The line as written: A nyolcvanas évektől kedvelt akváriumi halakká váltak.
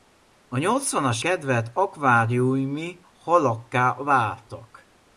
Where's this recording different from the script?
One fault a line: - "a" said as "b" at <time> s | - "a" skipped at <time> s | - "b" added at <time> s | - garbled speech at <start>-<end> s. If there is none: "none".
- "évektől" skipped at 1.2 s